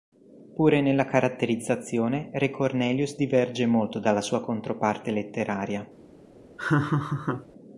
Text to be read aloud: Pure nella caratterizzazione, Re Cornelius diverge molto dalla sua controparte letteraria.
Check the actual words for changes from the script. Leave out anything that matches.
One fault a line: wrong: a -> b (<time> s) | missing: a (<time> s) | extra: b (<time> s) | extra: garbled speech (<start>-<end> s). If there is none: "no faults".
no faults